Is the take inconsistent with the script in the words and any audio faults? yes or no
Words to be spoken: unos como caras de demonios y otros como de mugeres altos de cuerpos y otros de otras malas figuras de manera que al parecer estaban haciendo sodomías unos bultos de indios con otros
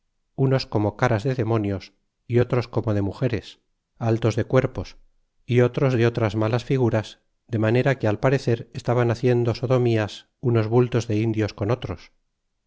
no